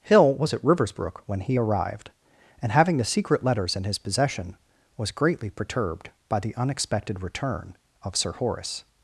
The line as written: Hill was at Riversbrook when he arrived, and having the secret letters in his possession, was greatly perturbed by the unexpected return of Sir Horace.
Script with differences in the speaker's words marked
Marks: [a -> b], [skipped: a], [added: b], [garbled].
Hill was at Riversbrook when he arrived, and having the secret letters in his possession, was greatly perturbed by the unexpected return of Sir Horace.